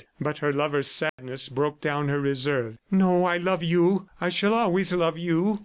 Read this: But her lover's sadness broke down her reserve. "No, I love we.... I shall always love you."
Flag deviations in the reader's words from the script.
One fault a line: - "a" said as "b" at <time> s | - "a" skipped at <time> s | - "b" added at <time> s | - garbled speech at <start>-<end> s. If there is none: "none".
- "we" said as "you" at 3.6 s